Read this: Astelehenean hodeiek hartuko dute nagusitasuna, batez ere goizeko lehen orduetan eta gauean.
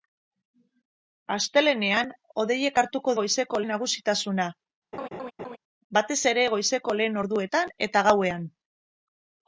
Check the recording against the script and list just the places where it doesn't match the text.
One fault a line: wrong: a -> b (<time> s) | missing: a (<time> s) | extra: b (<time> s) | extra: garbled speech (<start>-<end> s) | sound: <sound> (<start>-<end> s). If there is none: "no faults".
wrong: dute -> goizeko (3.2 s)
sound: laugh (4.9-5.6 s)